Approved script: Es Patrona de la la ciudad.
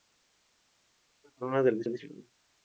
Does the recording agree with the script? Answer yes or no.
yes